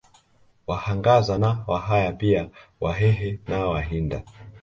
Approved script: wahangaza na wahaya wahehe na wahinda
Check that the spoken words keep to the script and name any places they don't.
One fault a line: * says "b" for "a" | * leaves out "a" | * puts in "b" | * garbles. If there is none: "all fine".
* puts in "pia"